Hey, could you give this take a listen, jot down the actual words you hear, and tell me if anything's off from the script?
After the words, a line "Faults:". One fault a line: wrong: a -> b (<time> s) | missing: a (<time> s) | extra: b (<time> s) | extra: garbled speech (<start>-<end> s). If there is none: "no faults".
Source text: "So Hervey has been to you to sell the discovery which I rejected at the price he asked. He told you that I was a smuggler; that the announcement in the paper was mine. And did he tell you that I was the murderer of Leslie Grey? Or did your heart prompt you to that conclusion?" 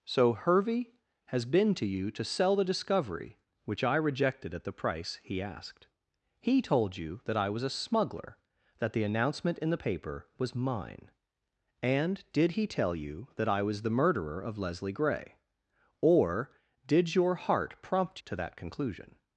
"So Hervey has been to you to sell the discovery which I rejected at the price he asked. He told you that I was a smuggler; that the announcement in the paper was mine. And did he tell you that I was the murderer of Leslie Grey? Or did your heart prompt to that conclusion?"
Faults:
missing: you (18.2 s)